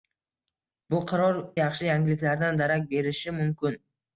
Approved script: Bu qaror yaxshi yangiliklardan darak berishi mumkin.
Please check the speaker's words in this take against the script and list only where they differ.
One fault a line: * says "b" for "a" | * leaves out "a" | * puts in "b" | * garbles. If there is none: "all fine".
all fine